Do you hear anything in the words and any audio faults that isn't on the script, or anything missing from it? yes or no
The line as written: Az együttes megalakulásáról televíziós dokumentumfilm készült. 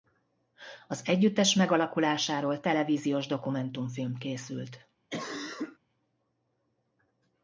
yes